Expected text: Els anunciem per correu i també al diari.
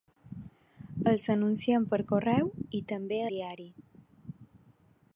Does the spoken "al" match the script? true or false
false